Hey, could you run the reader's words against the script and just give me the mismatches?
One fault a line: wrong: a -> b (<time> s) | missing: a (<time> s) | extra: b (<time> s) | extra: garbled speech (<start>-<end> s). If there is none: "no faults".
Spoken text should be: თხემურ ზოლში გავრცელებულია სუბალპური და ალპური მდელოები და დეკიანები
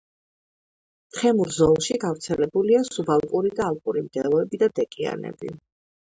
no faults